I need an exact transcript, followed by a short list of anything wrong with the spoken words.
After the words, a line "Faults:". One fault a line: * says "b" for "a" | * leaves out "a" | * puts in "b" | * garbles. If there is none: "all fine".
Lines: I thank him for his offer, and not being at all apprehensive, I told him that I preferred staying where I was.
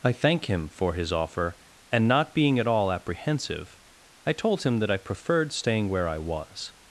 I thank him for his offer, and not being at all apprehensive, I told him that I preferred staying where I was.
Faults:
all fine